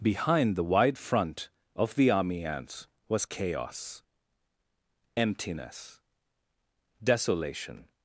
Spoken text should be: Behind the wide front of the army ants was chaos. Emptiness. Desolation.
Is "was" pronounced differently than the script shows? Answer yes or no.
no